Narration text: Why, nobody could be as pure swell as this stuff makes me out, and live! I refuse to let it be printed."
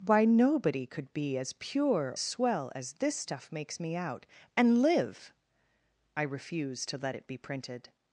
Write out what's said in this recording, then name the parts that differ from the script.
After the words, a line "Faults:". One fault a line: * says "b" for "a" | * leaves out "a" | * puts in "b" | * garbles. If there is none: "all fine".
Why, nobody could be as pure swell as this stuff makes me out, and live! I refuse to let it be printed."
Faults:
all fine